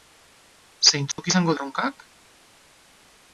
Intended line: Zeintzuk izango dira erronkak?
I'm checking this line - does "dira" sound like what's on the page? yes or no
no